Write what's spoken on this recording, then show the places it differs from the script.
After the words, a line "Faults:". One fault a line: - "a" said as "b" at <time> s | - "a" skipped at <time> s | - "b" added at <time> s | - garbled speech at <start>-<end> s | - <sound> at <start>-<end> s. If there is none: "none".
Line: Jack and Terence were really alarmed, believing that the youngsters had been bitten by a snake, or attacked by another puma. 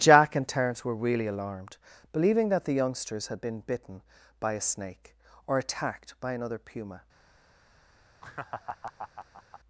Jack and Terence were really alarmed, believing that the youngsters had been bitten by a snake, or attacked by another puma.
Faults:
- laugh at 8.2-9.6 s